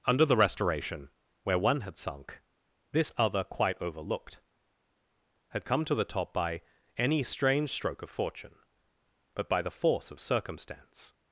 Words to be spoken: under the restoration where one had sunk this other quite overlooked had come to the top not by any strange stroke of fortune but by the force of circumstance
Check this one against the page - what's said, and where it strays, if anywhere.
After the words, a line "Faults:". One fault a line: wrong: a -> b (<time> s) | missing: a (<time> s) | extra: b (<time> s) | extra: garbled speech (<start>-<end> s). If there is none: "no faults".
under the restoration where one had sunk this other quite overlooked had come to the top by any strange stroke of fortune but by the force of circumstance
Faults:
missing: not (6.3 s)